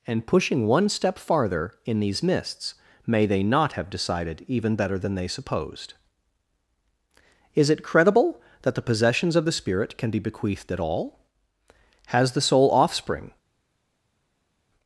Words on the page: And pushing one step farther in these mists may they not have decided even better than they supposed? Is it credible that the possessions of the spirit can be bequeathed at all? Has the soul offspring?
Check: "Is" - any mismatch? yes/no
no